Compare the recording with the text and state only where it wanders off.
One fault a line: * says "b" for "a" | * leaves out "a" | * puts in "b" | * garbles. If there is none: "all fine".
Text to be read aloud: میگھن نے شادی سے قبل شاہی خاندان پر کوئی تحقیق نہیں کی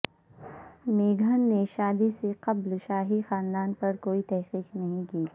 all fine